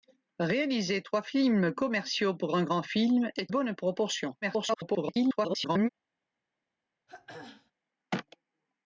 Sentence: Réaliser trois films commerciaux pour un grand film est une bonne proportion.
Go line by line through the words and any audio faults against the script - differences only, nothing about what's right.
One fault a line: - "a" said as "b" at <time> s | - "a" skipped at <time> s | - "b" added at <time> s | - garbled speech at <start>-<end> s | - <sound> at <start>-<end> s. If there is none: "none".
- "une" skipped at 3.5 s
- garbled speech at 4.4-5.9 s
- throat clearing at 7.1-7.7 s